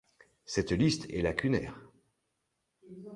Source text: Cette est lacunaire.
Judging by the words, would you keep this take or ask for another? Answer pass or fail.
fail